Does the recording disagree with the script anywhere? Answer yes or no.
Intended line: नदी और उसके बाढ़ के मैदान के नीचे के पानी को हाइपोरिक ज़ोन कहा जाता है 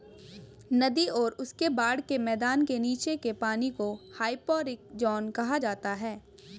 no